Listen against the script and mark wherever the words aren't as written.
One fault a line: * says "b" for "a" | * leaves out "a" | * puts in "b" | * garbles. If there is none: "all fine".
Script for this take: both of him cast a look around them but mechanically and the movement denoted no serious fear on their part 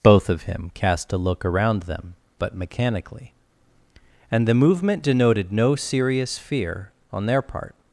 all fine